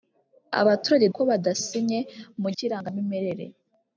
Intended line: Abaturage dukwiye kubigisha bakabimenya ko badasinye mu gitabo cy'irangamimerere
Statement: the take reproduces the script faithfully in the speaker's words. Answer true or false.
false